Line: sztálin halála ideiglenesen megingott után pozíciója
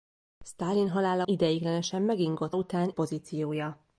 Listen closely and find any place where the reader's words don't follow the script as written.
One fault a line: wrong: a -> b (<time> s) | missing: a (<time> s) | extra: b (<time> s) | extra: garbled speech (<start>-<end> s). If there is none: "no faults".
no faults